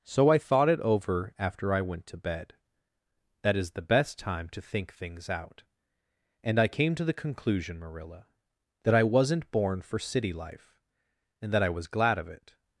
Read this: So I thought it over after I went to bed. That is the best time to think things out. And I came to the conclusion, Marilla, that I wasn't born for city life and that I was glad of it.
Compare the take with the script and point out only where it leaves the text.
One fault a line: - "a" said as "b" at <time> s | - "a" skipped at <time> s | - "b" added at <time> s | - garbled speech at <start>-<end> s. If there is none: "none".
none